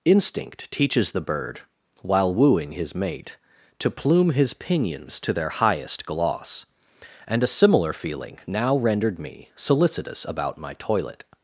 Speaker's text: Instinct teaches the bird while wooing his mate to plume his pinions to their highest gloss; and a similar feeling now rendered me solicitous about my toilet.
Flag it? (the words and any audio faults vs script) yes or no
no